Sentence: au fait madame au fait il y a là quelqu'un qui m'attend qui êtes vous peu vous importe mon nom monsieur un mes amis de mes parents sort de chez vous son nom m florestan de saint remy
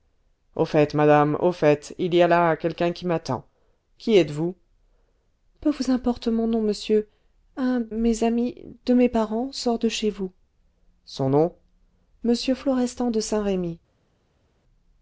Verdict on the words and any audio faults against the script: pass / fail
pass